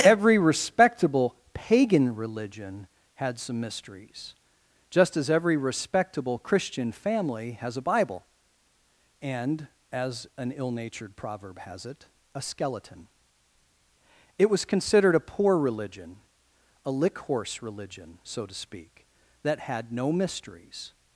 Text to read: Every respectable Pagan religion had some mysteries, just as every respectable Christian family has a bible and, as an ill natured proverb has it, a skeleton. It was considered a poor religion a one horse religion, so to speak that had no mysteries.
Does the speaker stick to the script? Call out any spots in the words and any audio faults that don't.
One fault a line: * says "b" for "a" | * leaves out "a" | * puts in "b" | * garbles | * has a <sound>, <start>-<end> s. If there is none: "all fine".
* says "lick" for "one"